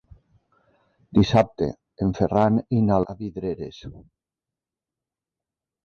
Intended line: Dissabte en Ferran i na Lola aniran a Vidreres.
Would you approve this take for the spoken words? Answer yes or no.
no